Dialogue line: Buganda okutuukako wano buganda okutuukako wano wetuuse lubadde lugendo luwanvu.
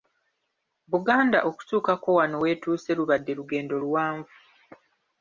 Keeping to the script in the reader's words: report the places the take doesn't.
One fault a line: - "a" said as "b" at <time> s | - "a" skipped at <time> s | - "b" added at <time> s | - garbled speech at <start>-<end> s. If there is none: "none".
- "buganda okutuukako wano" skipped at 2.4 s